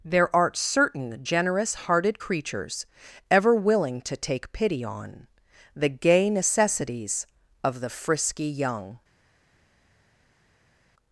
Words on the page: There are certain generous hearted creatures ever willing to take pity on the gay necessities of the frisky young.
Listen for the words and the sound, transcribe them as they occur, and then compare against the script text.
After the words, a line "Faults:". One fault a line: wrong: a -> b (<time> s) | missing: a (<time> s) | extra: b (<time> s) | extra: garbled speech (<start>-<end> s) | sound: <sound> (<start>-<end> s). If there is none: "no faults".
There art certain generous hearted creatures ever willing to take pity on the gay necessities of the frisky young.
Faults:
wrong: are -> art (0.3 s)